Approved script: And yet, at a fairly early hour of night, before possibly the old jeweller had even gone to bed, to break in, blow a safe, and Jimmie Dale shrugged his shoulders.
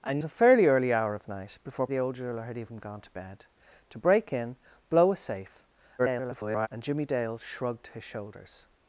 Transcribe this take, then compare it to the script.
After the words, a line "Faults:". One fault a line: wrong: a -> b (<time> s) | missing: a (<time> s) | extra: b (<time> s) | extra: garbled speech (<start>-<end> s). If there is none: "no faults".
And a fairly early hour of night, before the old jeweller had even gone to bed, to break in, blow a safe, [garbled] and Jimmie Dale shrugged his shoulders.
Faults:
missing: yet at (0.2 s)
missing: possibly (1.9 s)
extra: garbled speech (6.0-6.7 s)